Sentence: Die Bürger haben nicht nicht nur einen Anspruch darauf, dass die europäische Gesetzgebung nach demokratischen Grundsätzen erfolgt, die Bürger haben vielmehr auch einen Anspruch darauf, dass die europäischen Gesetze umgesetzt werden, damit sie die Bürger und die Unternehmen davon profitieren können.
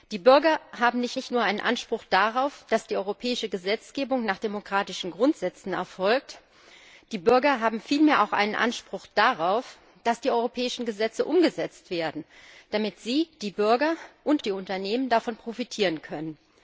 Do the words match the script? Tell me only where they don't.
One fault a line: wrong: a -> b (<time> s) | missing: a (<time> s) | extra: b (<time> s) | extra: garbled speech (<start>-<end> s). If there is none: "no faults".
no faults